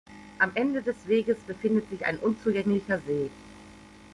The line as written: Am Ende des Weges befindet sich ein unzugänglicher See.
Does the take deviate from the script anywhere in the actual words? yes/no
no